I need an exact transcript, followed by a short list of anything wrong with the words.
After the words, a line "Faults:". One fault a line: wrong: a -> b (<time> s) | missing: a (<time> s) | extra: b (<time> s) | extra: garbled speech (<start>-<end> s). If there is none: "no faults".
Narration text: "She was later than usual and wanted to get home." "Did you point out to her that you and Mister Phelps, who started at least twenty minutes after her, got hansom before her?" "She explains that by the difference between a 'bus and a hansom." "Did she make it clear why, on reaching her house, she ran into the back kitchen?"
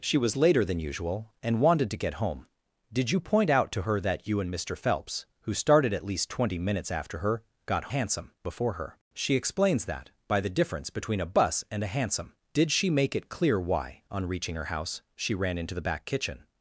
"She was later than usual and wanted to get home." "Did you point out to her that you and Mister Phelps, who started at least twenty minutes after her, got hansom before her?" "She explains that by the difference between a 'bus and a hansom." "Did she make it clear why, on reaching her house, she ran into the back kitchen?"
Faults:
no faults